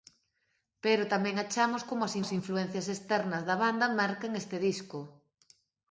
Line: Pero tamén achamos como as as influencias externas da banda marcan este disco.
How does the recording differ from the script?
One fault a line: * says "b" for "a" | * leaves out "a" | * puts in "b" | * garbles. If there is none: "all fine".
all fine